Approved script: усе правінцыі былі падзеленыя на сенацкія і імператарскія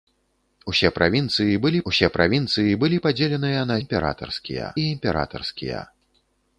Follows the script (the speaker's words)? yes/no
no